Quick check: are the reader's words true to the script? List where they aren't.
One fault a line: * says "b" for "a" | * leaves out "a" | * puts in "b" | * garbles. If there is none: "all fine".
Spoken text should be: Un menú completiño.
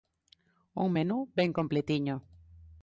* puts in "ben"